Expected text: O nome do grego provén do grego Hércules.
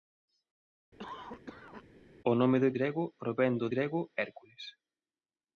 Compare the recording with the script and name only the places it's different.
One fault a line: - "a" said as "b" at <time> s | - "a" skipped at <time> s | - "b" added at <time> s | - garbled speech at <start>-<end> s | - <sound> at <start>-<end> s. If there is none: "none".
- cough at 1.0-1.8 s